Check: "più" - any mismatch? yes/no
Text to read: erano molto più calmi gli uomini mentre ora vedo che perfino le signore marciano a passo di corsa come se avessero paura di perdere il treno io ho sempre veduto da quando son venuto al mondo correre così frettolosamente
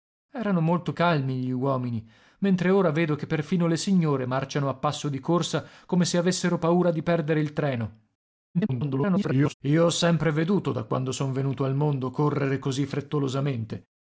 yes